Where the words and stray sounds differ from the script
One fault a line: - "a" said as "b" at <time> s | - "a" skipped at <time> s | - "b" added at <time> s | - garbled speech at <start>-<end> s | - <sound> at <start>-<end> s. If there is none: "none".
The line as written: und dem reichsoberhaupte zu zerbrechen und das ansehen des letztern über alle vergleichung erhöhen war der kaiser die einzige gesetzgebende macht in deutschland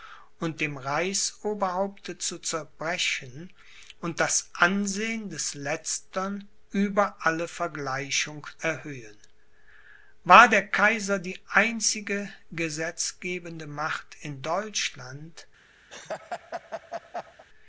- laugh at 15.9-17.4 s